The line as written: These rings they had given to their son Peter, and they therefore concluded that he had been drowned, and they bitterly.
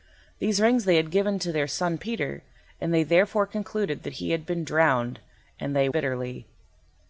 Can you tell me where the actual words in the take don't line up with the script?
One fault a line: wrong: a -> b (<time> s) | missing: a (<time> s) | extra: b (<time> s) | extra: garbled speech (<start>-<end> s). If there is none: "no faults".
no faults